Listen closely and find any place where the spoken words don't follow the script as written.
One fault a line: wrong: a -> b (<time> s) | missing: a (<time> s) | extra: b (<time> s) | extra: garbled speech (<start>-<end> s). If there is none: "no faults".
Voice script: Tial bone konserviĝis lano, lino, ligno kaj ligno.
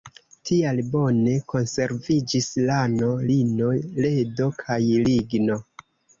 wrong: ligno -> ledo (4.1 s)